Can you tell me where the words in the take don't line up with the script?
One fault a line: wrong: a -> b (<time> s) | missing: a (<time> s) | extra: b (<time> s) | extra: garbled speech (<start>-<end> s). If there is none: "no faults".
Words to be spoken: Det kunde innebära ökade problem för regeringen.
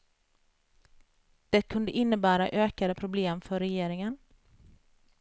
no faults